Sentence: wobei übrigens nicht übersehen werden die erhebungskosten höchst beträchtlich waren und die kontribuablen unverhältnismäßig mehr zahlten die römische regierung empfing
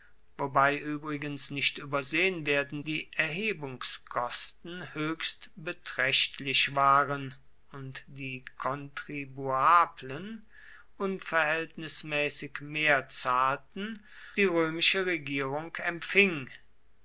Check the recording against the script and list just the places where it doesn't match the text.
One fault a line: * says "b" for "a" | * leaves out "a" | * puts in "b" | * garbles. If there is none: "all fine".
all fine